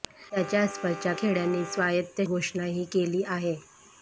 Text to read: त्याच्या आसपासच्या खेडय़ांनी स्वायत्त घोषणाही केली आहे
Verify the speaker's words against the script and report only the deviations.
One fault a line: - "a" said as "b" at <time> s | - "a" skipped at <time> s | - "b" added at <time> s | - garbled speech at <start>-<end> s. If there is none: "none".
none